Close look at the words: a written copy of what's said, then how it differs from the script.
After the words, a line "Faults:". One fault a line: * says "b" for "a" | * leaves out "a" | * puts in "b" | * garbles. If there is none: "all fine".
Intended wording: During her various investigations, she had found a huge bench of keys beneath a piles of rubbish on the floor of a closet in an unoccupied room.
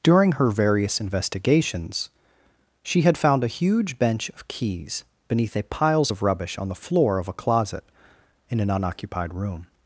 During her various investigations, she had found a huge bench of keys beneath a piles of rubbish on the floor of a closet in an unoccupied room.
Faults:
all fine